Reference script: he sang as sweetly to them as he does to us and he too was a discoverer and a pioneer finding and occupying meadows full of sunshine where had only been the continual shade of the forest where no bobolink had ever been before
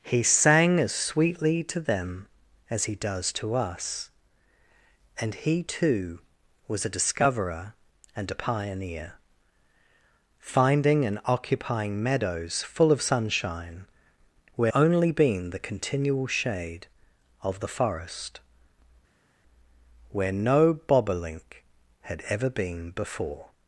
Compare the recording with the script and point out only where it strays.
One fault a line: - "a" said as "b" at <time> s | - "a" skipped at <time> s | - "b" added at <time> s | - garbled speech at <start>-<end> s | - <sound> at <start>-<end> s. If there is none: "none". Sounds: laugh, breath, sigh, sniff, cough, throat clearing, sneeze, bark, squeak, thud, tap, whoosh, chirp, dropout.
- "had" skipped at 14.7 s